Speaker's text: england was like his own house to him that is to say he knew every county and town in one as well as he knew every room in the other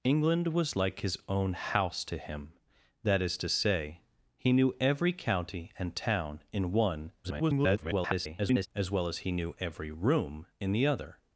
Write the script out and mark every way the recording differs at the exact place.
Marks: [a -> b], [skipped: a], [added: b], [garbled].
england was like his own house to him that is to say he knew every county and town in one [garbled] as well as he knew every room in the other